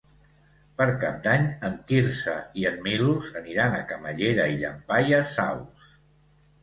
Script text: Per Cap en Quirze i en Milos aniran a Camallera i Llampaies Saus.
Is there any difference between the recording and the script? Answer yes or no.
yes